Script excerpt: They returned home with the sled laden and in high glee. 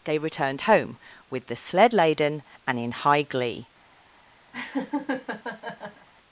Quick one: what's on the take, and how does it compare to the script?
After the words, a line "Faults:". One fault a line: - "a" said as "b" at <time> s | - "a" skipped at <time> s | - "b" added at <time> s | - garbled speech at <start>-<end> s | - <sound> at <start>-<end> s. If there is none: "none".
They returned home with the sled laden and in high glee.
Faults:
- laugh at 4.5-6.1 s